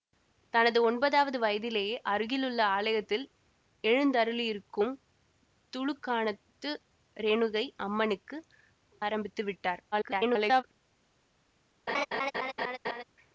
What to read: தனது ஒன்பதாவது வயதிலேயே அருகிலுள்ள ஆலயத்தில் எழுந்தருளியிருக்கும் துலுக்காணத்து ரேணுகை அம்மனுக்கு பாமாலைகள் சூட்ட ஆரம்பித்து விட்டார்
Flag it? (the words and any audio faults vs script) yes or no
yes